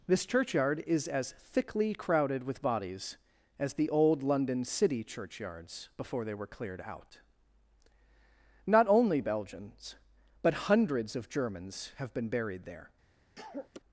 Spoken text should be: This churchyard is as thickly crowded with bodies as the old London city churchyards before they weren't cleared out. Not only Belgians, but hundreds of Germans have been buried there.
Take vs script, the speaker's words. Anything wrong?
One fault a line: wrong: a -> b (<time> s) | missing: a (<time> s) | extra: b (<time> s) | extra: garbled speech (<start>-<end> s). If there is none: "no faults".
wrong: weren't -> were (6.3 s)